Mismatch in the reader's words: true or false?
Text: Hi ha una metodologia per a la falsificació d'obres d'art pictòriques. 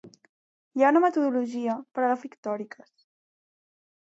true